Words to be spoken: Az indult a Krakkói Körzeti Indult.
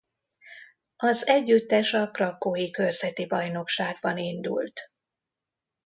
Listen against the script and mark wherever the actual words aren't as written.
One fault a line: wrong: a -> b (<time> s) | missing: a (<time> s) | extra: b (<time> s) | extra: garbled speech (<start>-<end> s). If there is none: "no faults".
wrong: indult -> együttes (1.3 s)
extra: Bajnokságban (3.3 s)